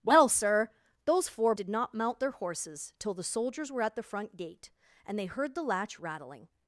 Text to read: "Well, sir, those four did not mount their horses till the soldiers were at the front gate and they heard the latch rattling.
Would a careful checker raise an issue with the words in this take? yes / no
no